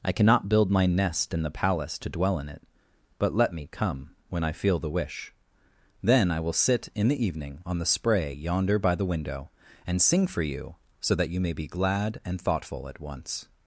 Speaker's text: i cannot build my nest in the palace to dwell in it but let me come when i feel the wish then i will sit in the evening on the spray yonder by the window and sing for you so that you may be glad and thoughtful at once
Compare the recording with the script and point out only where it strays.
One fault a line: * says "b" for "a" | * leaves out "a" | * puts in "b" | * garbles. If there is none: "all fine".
all fine